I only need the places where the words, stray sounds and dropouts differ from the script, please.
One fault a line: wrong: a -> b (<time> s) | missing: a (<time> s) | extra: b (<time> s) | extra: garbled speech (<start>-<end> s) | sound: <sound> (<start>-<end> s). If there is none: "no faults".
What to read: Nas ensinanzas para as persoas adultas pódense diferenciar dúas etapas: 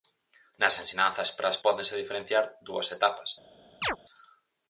missing: persoas adultas (1.6 s)
sound: chirp (3.8-4.0 s)